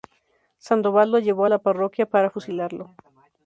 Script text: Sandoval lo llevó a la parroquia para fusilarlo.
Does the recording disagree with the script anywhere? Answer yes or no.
no